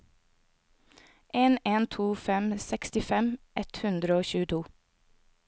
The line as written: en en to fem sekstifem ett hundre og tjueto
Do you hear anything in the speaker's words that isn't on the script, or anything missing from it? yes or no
no